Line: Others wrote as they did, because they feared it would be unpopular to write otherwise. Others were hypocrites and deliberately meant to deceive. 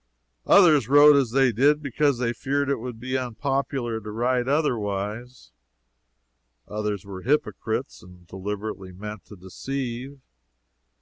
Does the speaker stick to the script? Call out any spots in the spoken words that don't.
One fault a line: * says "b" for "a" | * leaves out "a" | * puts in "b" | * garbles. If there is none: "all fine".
all fine